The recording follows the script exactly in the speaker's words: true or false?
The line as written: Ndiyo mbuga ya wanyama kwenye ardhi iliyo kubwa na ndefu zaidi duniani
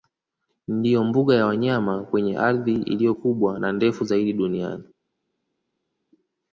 true